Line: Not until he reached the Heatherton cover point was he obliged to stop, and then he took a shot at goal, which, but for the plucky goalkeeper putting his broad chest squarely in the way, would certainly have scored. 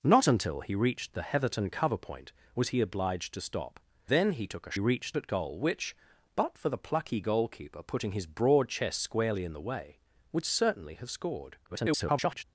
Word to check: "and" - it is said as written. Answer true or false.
false